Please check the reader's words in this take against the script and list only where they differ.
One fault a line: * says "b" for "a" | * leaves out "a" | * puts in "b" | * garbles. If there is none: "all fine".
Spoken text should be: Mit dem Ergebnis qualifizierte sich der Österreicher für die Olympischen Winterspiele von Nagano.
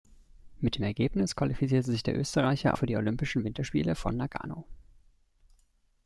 all fine